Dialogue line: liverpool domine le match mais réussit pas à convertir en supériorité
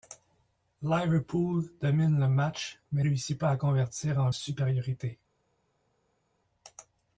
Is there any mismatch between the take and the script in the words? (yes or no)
no